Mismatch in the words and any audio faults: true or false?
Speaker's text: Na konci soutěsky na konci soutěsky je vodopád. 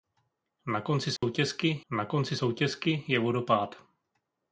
true